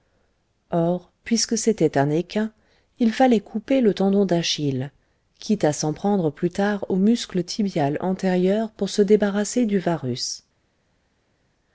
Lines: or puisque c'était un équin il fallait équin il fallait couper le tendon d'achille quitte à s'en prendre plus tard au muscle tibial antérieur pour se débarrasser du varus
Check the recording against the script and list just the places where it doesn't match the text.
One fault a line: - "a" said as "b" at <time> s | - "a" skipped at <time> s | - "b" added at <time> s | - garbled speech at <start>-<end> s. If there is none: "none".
- "équin il fallait" skipped at 3.4 s